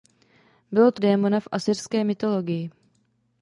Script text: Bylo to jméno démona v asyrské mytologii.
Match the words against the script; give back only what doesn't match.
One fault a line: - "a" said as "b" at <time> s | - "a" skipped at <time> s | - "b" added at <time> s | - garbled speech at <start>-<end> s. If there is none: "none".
- "jméno" skipped at 1.0 s